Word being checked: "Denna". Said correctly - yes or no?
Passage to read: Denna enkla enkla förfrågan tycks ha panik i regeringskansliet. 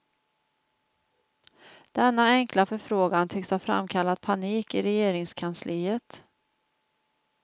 yes